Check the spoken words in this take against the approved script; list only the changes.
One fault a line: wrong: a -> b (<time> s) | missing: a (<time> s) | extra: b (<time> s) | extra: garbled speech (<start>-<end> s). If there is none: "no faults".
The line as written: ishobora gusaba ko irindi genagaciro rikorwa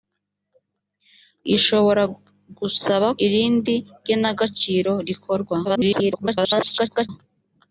missing: ko (3.1 s)
extra: garbled speech (5.6-7.1 s)